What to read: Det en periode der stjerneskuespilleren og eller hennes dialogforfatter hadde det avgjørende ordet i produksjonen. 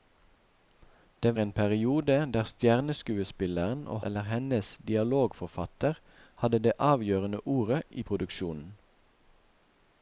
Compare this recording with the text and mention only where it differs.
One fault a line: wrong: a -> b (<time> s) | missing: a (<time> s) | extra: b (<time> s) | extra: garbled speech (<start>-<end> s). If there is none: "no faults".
no faults